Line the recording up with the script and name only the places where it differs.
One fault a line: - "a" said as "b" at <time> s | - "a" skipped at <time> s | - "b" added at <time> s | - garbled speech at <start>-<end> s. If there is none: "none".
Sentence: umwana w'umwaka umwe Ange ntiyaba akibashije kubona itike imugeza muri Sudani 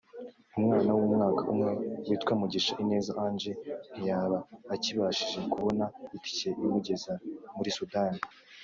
- "witwa Mugisha Ineza" added at 2.1 s